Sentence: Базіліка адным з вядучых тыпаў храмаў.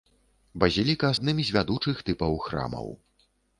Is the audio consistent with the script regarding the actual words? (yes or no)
yes